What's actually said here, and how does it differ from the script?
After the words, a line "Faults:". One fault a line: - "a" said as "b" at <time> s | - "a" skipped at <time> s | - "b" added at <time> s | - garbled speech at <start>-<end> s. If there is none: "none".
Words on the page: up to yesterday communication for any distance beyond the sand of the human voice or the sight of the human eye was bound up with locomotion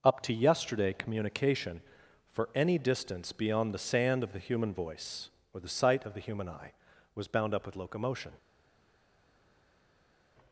up to yesterday communication for any distance beyond the sand of the human voice or the sight of the human eye was bound up with locomotion
Faults:
none